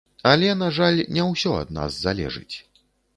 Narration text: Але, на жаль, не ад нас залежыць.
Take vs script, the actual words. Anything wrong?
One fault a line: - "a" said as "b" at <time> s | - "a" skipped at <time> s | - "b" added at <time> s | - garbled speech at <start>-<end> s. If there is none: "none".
- "ўсё" added at 1.3 s